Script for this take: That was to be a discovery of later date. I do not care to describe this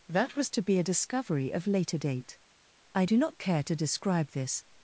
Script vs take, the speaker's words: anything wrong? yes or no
no